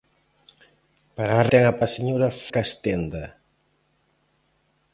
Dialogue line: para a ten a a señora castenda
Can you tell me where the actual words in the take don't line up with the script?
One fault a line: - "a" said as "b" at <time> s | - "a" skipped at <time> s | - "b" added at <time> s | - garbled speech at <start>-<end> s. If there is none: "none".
none